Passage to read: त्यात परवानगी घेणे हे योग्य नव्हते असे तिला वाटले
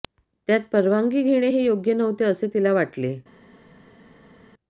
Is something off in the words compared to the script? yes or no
no